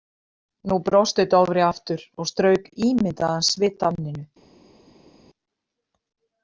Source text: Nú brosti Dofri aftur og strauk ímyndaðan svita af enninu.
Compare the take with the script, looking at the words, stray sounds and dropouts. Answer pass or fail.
fail